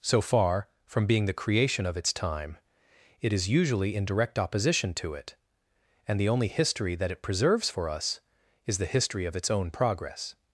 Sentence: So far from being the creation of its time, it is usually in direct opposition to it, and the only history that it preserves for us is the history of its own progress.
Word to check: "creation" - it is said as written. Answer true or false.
true